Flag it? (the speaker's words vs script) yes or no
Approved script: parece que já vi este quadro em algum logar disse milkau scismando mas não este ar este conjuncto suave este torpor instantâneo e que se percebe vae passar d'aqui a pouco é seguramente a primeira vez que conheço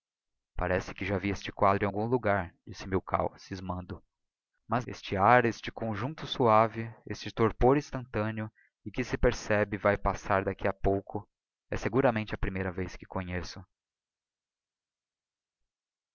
yes